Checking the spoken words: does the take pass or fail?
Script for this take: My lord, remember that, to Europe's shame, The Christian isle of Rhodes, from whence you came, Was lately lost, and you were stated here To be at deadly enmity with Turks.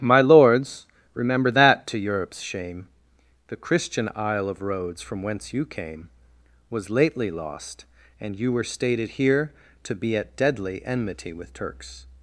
fail